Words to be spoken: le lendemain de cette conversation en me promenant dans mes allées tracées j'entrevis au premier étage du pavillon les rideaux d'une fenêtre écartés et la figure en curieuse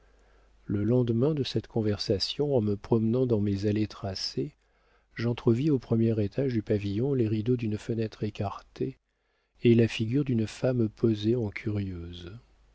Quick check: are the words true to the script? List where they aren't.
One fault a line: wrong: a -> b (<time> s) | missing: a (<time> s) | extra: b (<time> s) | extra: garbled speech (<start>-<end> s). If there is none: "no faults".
extra: d'une femme posée (10.2 s)